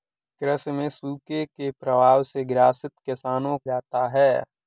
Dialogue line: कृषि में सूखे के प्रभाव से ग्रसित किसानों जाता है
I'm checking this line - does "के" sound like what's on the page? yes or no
yes